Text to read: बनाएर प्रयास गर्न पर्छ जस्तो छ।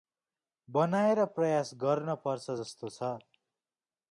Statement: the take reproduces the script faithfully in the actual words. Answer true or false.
true